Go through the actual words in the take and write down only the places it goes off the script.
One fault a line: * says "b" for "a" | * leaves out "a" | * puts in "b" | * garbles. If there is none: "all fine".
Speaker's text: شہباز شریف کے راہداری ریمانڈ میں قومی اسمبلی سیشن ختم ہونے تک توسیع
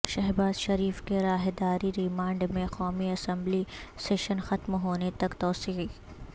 all fine